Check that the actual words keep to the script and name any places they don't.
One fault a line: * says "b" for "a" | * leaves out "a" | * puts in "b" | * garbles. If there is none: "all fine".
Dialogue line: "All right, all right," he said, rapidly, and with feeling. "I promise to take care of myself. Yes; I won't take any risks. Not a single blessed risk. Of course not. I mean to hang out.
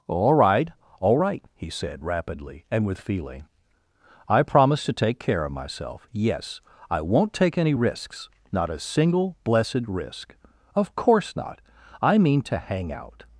all fine